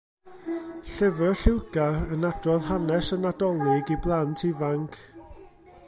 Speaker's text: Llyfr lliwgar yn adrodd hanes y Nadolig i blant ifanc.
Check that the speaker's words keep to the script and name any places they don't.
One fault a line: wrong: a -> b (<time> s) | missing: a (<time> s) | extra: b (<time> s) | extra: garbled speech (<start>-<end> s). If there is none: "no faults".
no faults